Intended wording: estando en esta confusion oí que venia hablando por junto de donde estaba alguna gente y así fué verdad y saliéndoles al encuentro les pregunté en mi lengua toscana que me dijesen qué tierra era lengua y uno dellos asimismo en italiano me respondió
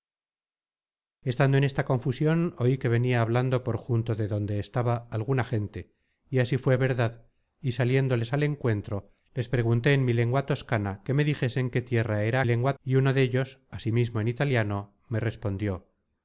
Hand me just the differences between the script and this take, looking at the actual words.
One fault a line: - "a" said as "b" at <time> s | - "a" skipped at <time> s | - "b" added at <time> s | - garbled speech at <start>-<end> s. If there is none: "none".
none